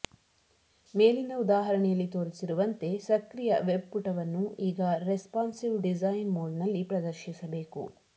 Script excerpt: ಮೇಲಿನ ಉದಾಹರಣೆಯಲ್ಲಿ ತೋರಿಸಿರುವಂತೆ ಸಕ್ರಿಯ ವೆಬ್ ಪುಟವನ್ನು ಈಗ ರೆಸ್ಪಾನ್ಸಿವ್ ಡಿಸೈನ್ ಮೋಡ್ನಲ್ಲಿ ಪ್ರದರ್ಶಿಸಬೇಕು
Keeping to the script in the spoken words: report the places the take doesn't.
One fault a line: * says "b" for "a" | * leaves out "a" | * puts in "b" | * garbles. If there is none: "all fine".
all fine